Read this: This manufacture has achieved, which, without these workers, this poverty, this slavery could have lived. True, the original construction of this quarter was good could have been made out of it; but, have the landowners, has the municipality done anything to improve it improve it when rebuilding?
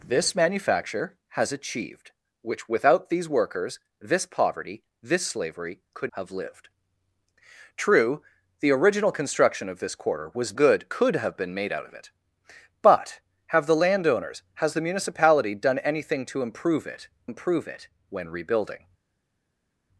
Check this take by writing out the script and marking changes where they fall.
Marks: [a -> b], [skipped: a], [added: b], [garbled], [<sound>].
This manufacture has achieved, which, without these workers, this poverty, this slavery could have lived. True, the original construction of this quarter was good could have been made out of it; but, have the landowners, has the municipality done anything to improve it improve it when rebuilding?